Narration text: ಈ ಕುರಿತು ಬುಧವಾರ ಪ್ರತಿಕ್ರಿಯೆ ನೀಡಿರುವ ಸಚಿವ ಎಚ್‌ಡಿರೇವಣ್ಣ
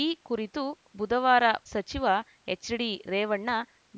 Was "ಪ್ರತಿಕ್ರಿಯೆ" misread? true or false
true